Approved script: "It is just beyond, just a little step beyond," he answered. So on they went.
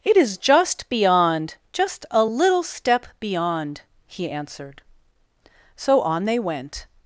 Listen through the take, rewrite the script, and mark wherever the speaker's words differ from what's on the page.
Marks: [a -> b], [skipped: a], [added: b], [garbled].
"It is just beyond, just a little step beyond," he answered. So on they went.